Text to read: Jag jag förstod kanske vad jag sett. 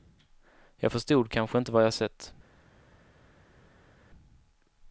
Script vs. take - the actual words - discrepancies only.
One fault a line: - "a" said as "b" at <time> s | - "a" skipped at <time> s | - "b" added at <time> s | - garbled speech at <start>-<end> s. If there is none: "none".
- "jag" skipped at 0.9 s
- "inte" added at 1.6 s